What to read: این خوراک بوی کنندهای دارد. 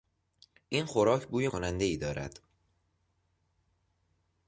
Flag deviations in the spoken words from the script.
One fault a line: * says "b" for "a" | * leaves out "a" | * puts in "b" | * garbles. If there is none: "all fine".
all fine